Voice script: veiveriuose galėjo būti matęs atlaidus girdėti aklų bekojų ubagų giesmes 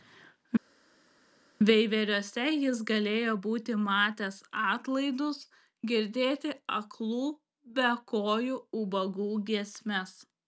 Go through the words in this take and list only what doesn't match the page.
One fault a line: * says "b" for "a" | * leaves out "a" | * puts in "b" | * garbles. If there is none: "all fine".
* puts in "jis"